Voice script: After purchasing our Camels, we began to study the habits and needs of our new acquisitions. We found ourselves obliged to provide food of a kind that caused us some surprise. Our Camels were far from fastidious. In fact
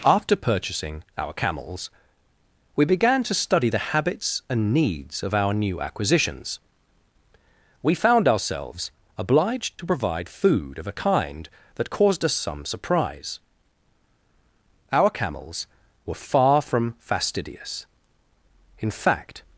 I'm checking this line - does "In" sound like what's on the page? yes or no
yes